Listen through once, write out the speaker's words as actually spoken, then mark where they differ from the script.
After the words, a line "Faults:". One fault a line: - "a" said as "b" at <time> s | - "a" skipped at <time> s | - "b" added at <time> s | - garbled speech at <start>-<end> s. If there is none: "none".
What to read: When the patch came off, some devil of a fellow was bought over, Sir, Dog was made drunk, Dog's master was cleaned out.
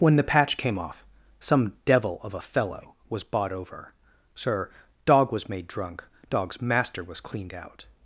When the patch came off, some devil of a fellow was bought over, Sir, Dog was made drunk, Dog's master was cleaned out.
Faults:
none